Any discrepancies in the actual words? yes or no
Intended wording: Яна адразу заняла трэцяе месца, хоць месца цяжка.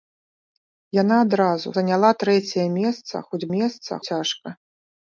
no